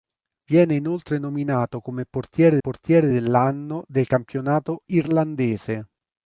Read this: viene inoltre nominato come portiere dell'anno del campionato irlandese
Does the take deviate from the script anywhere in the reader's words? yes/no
yes